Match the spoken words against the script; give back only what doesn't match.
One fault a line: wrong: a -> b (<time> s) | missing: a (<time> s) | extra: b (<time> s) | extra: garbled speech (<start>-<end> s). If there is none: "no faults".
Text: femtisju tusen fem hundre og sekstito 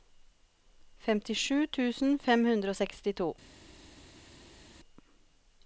no faults